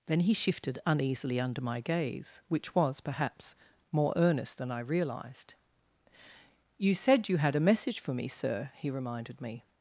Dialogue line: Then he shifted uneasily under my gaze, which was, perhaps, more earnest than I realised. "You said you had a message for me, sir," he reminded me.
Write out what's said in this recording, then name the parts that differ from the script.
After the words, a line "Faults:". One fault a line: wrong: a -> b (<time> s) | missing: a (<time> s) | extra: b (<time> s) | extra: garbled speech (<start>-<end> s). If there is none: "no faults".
Then he shifted uneasily under my gaze, which was, perhaps, more earnest than I realised. "You said you had a message for me, sir," he reminded me.
Faults:
no faults